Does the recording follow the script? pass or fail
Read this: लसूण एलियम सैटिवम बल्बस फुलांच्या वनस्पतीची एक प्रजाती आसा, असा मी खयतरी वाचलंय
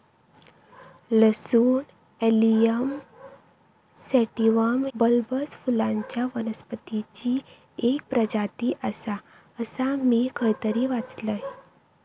pass